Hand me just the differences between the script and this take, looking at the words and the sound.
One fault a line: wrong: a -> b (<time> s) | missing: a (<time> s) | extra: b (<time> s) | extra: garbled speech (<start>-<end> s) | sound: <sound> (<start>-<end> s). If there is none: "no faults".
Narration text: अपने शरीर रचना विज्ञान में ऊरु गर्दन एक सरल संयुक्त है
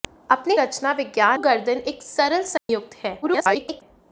missing: शरीर (0.6 s)
missing: में ऊरु (1.4 s)
sound: dropout (2.6-2.7 s)
extra: garbled speech (3.2-3.8 s)